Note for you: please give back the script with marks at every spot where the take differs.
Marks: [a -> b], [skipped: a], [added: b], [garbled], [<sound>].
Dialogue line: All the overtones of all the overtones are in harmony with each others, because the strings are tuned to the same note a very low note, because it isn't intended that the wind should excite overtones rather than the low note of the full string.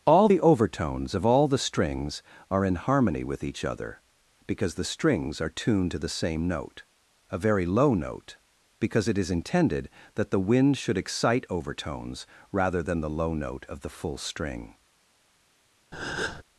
All the overtones of all the [overtones -> strings] are in harmony with each [others, -> other] because the strings are tuned to the same note a very low note, because it [isn't -> is] intended that the wind should excite overtones rather than the low note of the full string. [breath]